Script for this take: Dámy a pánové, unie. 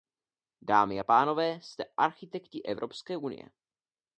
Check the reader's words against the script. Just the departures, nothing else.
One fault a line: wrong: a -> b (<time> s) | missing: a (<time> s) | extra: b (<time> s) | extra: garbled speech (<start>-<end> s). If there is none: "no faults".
extra: jste architekti Evropské (1.6 s)